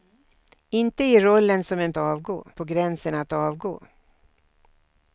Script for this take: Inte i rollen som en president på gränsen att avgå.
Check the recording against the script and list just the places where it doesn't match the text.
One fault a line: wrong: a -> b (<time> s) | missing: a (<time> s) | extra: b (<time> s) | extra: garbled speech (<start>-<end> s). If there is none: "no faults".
wrong: president -> avgå (2.0 s)